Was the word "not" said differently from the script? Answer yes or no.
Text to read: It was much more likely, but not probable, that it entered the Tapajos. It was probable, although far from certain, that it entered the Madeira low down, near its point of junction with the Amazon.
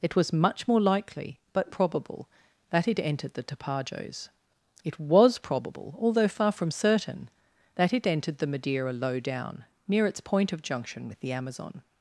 yes